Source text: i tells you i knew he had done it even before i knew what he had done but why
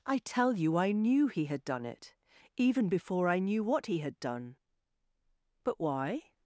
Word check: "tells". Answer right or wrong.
wrong